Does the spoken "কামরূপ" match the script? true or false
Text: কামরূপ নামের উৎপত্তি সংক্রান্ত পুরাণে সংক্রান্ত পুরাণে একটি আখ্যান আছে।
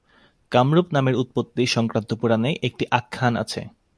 true